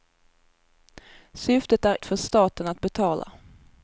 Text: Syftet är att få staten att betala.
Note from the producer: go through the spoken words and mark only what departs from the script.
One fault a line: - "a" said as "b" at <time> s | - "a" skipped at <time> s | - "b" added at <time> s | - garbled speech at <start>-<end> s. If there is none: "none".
none